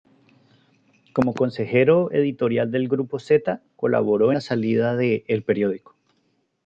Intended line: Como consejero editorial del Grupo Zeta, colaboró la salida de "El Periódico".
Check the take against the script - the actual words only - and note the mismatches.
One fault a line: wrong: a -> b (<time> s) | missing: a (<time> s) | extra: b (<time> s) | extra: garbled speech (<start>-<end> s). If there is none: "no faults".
no faults